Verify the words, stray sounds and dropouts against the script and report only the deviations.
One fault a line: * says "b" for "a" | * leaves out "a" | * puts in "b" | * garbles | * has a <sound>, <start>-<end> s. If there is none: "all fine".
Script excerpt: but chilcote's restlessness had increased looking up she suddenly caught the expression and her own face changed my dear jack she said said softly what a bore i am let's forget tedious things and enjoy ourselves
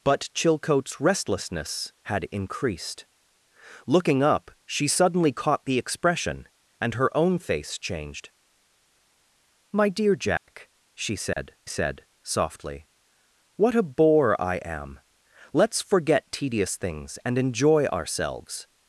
* has a dropout, 10.4-10.5 s
* has a dropout, 11.3-11.4 s